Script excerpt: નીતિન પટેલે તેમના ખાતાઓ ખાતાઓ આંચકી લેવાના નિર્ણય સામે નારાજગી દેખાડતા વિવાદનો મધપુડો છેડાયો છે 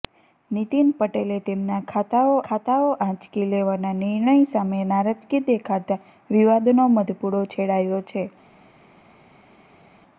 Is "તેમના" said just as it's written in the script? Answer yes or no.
yes